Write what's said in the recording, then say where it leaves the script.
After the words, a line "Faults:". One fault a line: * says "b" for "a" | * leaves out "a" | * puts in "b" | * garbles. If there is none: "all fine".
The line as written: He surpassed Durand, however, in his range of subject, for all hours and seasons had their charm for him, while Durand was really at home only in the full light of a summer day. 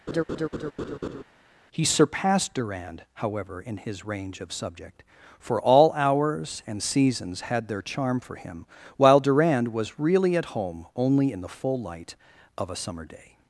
He surpassed Durand, however, in his range of subject, for all hours and seasons had their charm for him, while Durand was really at home only in the full light of a summer day.
Faults:
all fine